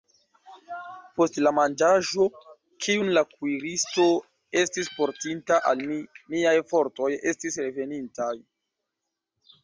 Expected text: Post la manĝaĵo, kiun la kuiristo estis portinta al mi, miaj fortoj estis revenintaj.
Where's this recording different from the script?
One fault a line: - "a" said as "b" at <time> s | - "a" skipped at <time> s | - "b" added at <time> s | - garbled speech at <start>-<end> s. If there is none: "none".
none